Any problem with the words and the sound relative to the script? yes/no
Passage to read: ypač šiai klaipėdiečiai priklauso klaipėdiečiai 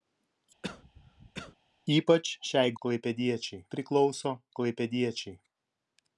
yes